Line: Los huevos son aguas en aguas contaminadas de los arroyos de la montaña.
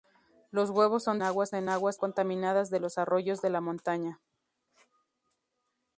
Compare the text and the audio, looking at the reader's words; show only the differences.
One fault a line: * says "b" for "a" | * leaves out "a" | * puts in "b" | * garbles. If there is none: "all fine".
all fine